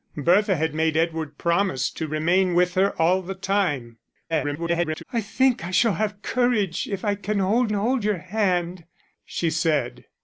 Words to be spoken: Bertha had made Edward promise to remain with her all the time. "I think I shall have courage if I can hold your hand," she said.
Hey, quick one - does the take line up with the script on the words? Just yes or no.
no